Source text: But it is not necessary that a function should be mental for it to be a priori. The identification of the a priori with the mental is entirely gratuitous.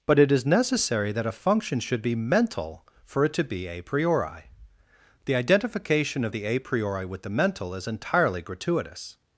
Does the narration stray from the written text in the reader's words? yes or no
yes